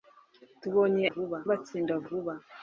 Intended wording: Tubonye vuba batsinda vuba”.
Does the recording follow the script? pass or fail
pass